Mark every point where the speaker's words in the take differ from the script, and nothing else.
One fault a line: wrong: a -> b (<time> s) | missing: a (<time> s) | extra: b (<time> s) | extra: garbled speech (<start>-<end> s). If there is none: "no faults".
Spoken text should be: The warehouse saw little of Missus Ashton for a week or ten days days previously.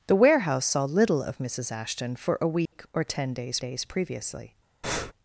no faults